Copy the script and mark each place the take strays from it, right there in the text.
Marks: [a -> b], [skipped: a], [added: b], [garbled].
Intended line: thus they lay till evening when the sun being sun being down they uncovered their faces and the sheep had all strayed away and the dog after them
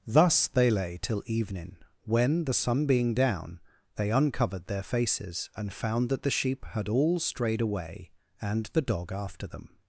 thus they lay till evening when the sun being [skipped: sun being] down they uncovered their faces and [added: found that] the sheep had all strayed away and the dog after them